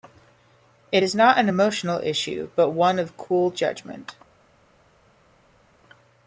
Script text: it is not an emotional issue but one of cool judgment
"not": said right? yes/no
yes